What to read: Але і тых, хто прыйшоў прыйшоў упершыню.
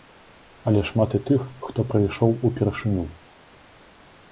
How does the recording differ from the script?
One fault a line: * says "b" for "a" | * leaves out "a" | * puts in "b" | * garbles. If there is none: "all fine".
* puts in "шмат"
* leaves out "прыйшоў"